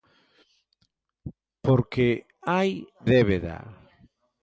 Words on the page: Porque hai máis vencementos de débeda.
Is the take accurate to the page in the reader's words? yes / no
no